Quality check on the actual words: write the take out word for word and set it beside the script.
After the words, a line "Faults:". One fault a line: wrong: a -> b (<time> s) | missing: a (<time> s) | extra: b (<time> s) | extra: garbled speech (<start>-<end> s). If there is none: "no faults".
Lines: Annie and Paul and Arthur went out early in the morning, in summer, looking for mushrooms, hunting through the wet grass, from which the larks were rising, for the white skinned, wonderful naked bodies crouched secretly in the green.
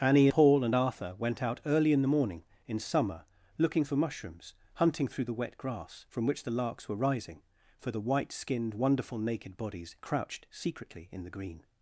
Annie Paul and Arthur went out early in the morning, in summer, looking for mushrooms, hunting through the wet grass, from which the larks were rising, for the white skinned, wonderful naked bodies crouched secretly in the green.
Faults:
missing: and (0.3 s)